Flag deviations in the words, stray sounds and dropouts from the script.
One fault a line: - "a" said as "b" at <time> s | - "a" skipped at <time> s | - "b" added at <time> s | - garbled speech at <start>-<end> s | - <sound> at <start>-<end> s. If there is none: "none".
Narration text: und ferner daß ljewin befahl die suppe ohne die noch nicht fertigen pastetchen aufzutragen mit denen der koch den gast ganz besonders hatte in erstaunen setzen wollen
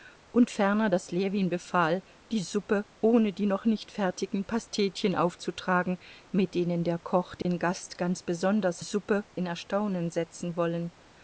- dropout at 7.4-7.5 s
- "hatte" said as "suppe" at 8.8 s